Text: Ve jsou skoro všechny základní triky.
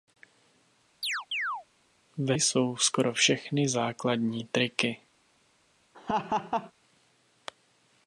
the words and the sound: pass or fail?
fail